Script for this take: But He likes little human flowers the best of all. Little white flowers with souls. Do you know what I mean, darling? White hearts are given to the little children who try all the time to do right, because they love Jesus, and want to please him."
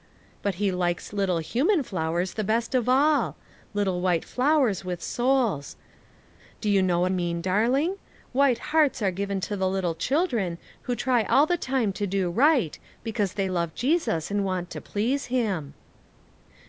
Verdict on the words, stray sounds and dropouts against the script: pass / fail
fail